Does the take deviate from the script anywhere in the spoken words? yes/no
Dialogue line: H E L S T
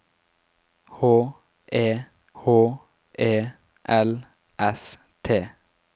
yes